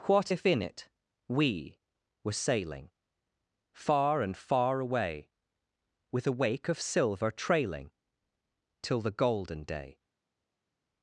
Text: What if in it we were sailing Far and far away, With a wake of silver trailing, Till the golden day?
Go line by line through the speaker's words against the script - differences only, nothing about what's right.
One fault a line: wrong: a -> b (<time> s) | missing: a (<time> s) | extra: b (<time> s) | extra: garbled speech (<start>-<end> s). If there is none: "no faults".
no faults